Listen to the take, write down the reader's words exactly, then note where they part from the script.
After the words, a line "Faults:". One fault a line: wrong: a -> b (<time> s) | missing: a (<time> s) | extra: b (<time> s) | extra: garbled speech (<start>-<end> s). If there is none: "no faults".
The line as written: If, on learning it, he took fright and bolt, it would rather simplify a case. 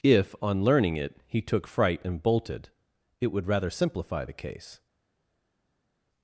If, on learning it, he took fright and bolted, it would rather simplify the case.
Faults:
wrong: bolt -> bolted (2.2 s)
wrong: a -> the (4.2 s)